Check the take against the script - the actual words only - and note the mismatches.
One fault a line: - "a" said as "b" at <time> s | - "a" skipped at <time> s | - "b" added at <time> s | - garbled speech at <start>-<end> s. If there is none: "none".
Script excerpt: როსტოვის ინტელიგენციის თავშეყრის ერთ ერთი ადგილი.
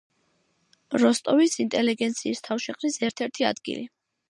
none